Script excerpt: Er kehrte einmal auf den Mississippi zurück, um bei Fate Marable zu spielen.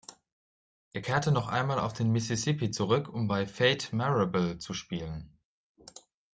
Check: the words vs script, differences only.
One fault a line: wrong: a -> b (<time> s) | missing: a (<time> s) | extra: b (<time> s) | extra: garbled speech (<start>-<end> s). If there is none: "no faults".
extra: noch (1.3 s)